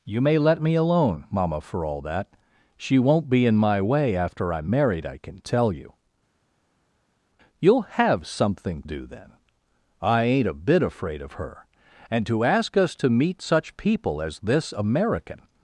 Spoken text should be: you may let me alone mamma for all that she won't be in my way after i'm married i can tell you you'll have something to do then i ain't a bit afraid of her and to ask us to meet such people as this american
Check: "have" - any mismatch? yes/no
no